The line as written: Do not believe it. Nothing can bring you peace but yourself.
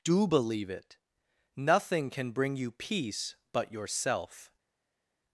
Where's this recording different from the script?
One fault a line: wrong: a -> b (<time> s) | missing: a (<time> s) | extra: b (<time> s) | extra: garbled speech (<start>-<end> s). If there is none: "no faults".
missing: not (0.3 s)